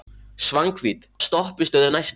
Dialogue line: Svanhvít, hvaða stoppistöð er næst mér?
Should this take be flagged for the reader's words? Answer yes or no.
yes